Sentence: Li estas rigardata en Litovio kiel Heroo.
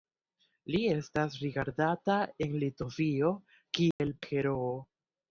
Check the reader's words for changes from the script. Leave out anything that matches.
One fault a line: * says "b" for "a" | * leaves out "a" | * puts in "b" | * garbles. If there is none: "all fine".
all fine